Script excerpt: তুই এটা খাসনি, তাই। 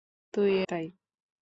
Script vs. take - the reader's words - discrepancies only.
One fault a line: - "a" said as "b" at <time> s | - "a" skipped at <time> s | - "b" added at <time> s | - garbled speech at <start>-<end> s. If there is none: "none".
- "এটা খাসনি" skipped at 0.5 s